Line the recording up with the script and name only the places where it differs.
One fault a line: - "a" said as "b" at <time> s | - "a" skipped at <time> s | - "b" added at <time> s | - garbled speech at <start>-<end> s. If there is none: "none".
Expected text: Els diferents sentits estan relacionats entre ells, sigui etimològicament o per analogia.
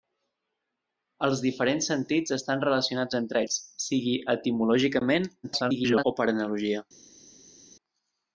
- garbled speech at 5.4-6.0 s